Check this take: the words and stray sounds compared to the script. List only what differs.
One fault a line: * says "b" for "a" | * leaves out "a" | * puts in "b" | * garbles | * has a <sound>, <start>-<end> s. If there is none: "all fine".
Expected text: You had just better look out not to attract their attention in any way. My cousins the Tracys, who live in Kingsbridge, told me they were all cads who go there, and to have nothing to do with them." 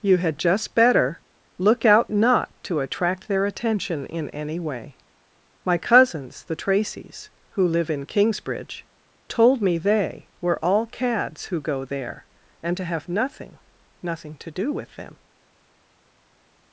* puts in "nothing"